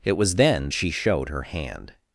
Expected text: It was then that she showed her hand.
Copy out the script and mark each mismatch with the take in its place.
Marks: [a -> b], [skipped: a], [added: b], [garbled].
It was then [skipped: that] she showed her hand.